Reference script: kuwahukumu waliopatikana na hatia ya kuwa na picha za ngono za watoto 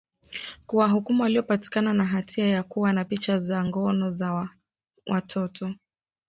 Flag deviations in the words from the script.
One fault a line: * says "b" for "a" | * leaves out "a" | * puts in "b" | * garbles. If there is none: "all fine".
all fine